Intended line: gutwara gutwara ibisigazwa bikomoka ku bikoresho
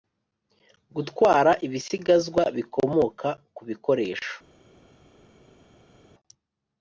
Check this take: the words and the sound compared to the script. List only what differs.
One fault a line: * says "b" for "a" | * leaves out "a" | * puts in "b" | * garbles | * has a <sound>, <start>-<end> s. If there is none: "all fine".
* leaves out "gutwara"